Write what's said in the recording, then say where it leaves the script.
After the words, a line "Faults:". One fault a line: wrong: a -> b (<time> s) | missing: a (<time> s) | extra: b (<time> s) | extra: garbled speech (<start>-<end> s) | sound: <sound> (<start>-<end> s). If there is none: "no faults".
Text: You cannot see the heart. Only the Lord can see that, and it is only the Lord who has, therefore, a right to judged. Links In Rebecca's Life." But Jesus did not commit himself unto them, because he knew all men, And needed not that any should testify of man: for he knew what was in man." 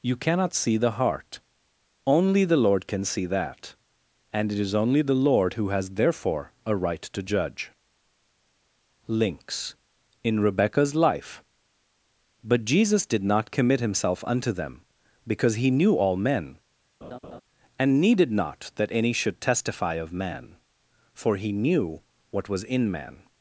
You cannot see the heart. Only the Lord can see that, and it is only the Lord who has, therefore, a right to judge. Links In Rebecca's Life." But Jesus did not commit himself unto them, because he knew all men, And needed not that any should testify of man: for he knew what was in man."
Faults:
wrong: judged -> judge (7.2 s)
sound: laugh (17.0-17.4 s)